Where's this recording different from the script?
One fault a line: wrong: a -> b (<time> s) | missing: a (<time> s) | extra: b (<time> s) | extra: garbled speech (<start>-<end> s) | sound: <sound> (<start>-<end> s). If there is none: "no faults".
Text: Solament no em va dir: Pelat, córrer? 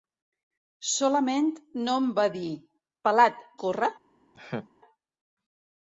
sound: laugh (4.3-4.7 s)